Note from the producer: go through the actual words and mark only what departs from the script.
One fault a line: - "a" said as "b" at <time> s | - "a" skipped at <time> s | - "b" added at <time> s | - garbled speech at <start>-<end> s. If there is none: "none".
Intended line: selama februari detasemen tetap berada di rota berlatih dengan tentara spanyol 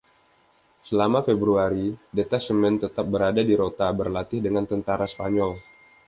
none